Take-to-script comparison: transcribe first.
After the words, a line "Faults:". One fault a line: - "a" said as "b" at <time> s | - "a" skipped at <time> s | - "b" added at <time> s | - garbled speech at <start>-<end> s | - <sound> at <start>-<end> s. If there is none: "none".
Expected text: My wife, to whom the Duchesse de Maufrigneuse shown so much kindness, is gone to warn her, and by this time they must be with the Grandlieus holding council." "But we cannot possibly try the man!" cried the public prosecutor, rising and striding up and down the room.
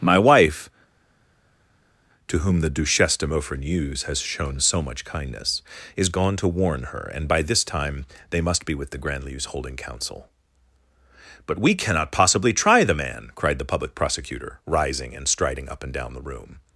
My wife, to whom the Duchesse de Maufrigneuse has shown so much kindness, is gone to warn her, and by this time they must be with the Grandlieus holding council." "But we cannot possibly try the man!" cried the public prosecutor, rising and striding up and down the room.
Faults:
- "has" added at 4.0 s